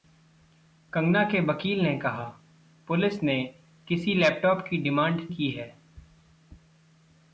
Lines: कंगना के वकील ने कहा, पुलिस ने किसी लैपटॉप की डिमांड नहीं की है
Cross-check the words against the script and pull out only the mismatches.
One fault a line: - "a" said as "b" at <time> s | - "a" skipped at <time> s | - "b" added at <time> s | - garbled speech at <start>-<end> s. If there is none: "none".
- "नहीं" skipped at 5.3 s